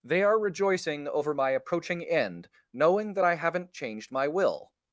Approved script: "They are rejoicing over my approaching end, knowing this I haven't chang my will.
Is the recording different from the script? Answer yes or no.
yes